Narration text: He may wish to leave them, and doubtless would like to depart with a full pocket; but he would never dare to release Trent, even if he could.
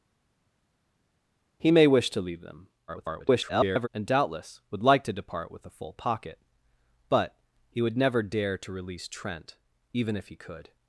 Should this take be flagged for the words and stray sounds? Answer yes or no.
yes